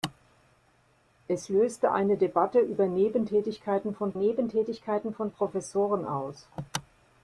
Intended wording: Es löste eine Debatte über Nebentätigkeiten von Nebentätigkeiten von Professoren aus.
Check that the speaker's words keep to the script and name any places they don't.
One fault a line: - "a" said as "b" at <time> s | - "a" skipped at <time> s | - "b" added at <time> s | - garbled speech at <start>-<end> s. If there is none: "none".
none